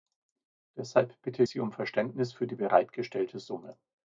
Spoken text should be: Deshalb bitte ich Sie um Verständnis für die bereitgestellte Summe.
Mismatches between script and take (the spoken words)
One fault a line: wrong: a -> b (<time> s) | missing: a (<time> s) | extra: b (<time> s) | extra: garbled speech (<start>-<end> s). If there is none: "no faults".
missing: ich (1.4 s)